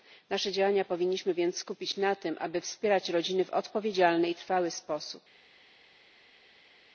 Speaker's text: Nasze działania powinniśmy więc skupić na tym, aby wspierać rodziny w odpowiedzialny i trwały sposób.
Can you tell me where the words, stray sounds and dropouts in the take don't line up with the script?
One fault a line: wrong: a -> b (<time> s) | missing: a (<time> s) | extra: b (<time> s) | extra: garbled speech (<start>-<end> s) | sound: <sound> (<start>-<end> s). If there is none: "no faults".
no faults